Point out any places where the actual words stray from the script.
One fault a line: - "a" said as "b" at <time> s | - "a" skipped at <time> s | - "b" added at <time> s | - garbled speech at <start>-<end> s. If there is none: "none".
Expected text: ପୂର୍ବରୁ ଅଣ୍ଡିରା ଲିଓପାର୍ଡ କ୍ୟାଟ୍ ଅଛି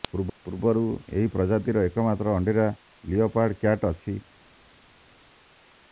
- "ଏହି ପ୍ରଜାତିର ଏକମାତ୍ର" added at 1.1 s